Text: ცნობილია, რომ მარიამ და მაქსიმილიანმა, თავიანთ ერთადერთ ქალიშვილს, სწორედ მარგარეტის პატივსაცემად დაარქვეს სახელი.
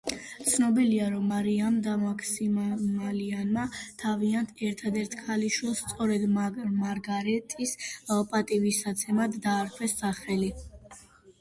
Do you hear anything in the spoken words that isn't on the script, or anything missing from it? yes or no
no